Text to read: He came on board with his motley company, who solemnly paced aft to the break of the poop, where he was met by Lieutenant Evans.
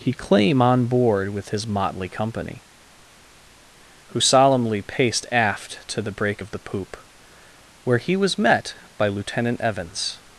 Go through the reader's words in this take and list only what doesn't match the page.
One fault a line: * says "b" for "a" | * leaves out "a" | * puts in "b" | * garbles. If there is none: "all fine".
* says "claim" for "came"